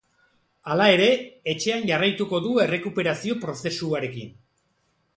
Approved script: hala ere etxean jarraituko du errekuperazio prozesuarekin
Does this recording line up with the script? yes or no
yes